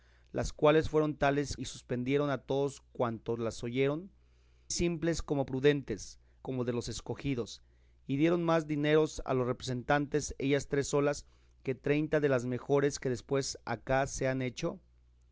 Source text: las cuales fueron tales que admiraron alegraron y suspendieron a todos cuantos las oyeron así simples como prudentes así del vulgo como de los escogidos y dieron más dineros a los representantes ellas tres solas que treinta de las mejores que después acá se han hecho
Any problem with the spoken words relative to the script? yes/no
yes